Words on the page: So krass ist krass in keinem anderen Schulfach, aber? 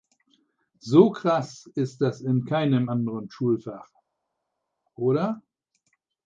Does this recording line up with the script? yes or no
no